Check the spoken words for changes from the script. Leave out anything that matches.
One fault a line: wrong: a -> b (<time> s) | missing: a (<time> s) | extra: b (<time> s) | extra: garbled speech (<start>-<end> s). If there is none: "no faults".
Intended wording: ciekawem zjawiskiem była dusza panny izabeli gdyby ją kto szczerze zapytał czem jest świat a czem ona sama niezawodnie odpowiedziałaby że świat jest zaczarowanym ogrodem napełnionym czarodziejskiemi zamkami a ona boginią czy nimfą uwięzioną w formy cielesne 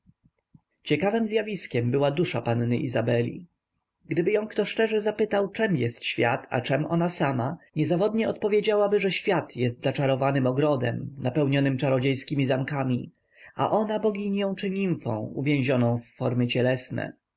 no faults